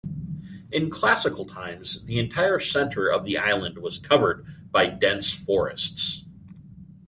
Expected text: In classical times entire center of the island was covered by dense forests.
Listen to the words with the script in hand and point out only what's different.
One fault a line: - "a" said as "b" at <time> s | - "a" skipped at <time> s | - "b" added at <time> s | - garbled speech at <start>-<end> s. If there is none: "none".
- "the" added at 2.0 s